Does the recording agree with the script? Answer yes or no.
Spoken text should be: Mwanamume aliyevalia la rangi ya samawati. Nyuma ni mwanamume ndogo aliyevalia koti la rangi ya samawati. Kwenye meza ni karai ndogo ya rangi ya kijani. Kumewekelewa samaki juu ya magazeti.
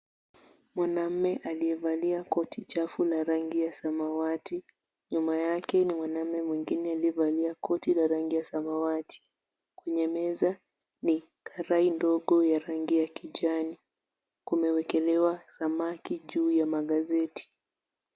no